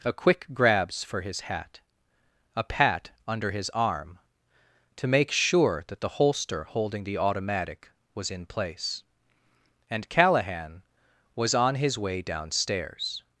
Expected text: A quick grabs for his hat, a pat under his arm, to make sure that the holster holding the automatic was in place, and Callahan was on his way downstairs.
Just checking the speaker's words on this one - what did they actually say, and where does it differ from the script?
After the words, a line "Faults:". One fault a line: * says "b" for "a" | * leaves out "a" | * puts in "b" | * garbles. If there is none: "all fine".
A quick grabs for his hat, a pat under his arm, to make sure that the holster holding the automatic was in place, and Callahan was on his way downstairs.
Faults:
all fine